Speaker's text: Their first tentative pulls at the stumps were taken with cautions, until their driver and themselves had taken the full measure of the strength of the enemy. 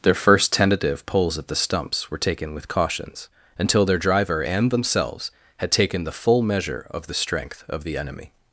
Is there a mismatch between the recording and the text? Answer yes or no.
no